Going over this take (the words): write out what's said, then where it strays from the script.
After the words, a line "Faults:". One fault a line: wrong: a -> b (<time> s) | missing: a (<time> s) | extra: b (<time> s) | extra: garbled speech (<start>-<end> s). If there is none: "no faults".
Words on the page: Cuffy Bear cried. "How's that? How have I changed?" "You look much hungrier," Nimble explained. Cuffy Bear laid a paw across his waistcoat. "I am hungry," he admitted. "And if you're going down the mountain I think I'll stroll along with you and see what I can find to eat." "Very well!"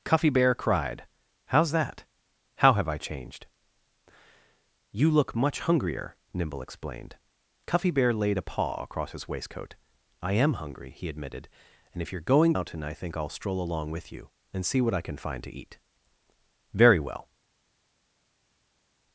Cuffy Bear cried. "How's that? How have I changed?" "You look much hungrier," Nimble explained. Cuffy Bear laid a paw across his waistcoat. "I am hungry," he admitted. "And if you're going mountain I think I'll stroll along with you and see what I can find to eat." "Very well!"
Faults:
missing: down the (12.5 s)